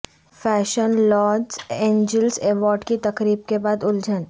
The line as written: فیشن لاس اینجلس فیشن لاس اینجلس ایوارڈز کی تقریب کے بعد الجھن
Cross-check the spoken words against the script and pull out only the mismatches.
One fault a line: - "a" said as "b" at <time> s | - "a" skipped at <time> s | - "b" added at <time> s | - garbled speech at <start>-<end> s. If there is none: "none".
- "فیشن لاس اینجلس" skipped at 2.4 s